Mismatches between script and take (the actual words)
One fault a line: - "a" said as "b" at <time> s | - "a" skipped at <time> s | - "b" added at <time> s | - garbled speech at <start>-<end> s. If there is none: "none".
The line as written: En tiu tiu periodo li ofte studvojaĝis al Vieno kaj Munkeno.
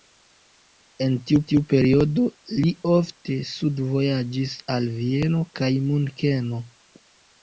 none